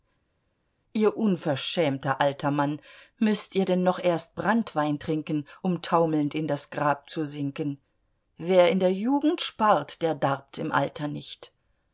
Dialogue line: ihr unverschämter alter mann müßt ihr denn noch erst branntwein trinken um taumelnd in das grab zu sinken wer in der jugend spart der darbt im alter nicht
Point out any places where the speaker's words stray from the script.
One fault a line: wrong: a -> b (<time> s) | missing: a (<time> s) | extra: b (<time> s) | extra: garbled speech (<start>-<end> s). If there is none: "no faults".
no faults